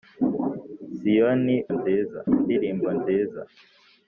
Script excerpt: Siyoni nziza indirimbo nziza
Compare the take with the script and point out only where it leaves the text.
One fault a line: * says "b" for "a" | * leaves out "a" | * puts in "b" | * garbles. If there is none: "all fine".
all fine